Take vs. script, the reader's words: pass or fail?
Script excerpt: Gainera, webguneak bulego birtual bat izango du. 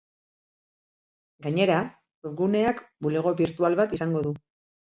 pass